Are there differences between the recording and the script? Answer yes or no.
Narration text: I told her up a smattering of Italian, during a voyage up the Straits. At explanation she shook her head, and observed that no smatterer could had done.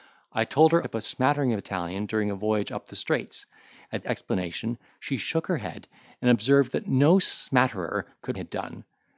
no